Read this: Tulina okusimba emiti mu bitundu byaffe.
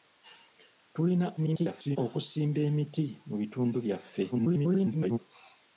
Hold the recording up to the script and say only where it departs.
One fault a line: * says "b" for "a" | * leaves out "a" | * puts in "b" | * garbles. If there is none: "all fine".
* garbles
* garbles